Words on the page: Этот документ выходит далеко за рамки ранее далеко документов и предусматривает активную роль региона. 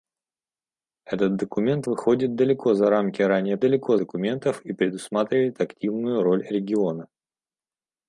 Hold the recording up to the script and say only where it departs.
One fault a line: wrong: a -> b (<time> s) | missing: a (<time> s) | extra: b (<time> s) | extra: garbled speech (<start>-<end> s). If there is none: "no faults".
no faults